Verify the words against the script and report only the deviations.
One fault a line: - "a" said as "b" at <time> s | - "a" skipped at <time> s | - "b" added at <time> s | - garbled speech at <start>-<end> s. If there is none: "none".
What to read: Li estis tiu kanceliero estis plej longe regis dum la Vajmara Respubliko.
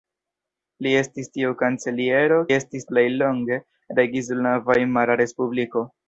none